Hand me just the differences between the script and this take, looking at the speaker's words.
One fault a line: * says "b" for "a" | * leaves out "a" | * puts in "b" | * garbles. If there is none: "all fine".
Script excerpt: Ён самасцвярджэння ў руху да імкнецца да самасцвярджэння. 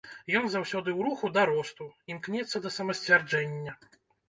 * says "заўсёды" for "самасцвярджэння"
* puts in "росту"